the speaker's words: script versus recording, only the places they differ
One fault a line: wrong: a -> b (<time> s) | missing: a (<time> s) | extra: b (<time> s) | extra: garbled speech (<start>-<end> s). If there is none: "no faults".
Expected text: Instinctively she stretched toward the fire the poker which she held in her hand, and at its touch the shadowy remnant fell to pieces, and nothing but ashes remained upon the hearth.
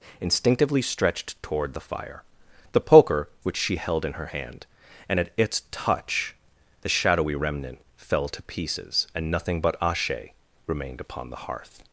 missing: she (0.8 s)
wrong: ashes -> ashe (9.8 s)